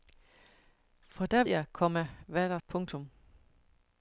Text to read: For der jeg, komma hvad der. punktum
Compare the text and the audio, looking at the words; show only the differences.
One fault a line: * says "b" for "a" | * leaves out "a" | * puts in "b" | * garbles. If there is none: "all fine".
all fine